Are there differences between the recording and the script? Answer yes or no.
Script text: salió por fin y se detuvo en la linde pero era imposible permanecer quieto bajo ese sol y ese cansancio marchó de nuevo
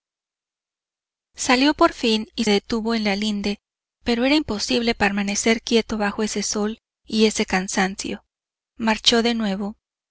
yes